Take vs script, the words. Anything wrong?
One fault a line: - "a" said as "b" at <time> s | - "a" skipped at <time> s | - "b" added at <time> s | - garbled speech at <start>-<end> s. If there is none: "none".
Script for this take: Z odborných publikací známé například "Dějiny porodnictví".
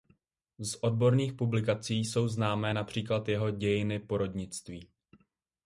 - "jsou" added at 2.0 s
- "jeho" added at 3.3 s